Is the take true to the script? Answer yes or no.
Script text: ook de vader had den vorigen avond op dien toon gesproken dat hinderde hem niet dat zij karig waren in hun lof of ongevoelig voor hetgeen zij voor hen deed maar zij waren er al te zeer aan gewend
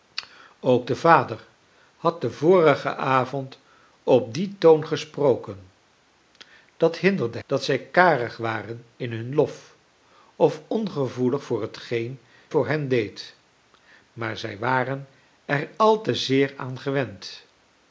no